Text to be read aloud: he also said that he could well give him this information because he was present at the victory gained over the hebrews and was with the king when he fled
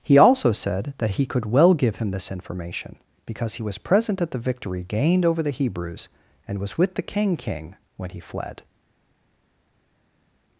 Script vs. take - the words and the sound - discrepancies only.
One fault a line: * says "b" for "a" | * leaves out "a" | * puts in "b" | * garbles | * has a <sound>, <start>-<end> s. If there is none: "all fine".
* puts in "king"